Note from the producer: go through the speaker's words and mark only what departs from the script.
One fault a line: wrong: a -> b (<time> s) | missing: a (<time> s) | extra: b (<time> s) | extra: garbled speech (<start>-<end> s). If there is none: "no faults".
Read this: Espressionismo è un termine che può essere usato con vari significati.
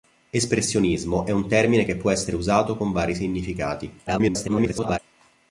extra: garbled speech (4.1-5.0 s)